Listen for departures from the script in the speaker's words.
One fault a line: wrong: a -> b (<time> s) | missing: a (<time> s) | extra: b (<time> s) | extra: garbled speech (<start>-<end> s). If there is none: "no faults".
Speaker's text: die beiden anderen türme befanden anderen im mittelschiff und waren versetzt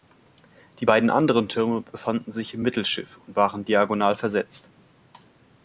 wrong: anderen -> sich (2.3 s)
extra: diagonal (3.6 s)